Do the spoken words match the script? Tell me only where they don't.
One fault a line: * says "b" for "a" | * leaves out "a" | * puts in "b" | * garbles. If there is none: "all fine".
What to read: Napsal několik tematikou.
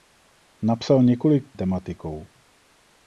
all fine